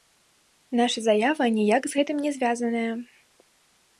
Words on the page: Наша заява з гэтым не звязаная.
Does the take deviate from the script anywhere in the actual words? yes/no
yes